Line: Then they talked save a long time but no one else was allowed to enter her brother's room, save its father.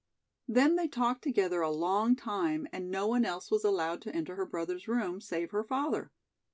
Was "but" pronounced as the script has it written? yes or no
no